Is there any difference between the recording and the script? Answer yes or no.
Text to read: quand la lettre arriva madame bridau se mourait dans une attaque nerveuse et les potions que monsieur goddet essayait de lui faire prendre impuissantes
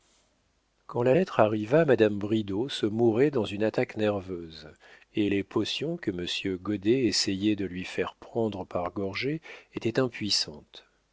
yes